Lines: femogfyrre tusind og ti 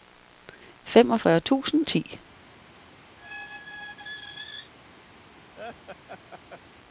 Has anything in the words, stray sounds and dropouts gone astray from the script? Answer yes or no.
yes